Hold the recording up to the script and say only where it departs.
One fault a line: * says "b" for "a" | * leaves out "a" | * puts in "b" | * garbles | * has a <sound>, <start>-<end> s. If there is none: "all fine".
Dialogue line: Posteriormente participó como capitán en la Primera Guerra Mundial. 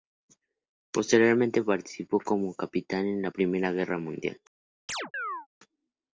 * has a chirp, 4.9-5.5 s